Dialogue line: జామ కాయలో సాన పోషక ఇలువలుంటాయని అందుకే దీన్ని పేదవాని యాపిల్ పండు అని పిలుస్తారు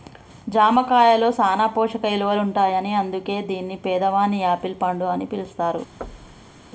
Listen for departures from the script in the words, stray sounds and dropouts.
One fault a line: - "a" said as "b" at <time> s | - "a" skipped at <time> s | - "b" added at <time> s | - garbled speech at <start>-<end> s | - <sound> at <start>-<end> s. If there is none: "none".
- thud at 6.0-6.6 s